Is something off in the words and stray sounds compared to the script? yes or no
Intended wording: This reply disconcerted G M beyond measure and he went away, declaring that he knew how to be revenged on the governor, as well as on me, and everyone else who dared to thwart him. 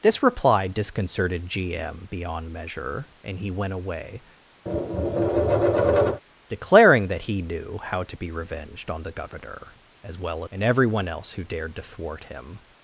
yes